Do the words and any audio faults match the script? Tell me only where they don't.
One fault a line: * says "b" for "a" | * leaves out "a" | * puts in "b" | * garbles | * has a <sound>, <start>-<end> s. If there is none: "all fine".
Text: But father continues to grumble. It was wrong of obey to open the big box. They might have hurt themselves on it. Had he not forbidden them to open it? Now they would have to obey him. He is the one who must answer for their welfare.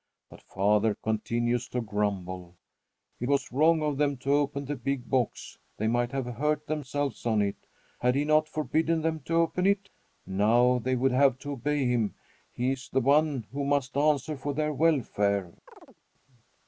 * says "them" for "obey"
* has a chirp, 15.7-16.0 s